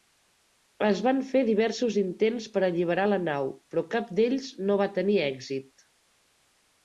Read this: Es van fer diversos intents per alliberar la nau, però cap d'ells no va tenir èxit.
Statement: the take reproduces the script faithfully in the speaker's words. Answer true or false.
true